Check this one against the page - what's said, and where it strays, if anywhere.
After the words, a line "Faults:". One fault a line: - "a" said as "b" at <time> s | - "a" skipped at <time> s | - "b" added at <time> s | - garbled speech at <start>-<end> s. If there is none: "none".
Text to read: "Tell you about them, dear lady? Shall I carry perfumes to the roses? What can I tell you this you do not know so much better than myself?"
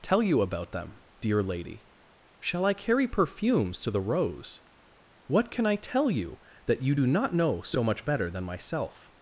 "Tell you about them, dear lady? Shall I carry perfumes to the rose? What can I tell you that you do not know so much better than myself?"
Faults:
- "roses" said as "rose" at 4.0 s
- "this" said as "that" at 6.7 s